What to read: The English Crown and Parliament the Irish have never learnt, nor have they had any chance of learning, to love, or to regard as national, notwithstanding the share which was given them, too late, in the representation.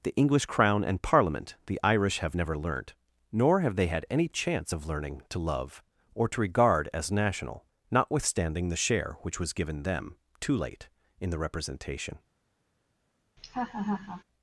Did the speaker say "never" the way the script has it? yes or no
yes